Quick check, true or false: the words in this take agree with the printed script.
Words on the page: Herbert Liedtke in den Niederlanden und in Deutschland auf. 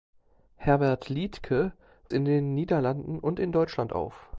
true